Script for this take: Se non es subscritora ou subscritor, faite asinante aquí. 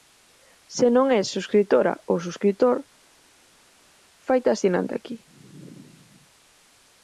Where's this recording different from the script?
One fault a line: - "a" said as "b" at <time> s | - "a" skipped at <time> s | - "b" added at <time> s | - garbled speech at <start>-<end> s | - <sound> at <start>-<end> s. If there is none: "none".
none